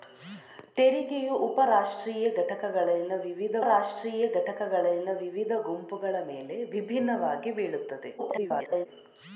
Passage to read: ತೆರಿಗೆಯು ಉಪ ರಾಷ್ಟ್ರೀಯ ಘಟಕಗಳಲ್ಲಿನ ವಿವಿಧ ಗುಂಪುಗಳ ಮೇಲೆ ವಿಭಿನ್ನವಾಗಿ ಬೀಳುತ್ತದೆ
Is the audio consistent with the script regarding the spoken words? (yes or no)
no